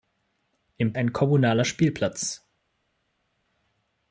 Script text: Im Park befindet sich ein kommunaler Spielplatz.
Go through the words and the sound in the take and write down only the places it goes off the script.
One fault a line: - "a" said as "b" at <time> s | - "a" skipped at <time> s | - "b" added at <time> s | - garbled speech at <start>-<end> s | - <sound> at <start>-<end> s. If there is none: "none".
- "Park befindet sich" skipped at 0.9 s